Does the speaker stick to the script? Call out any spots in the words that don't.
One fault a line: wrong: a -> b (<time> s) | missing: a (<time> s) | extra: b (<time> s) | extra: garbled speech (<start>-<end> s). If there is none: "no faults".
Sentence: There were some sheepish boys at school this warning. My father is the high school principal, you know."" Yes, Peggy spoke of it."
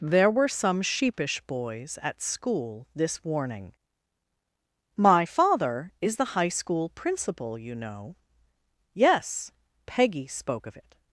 no faults